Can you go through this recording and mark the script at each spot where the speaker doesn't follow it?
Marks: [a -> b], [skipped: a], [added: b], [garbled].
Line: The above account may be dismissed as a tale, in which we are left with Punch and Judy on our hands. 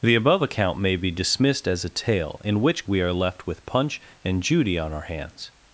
The above account may be dismissed as a tale, in which we are left with Punch and Judy on our hands.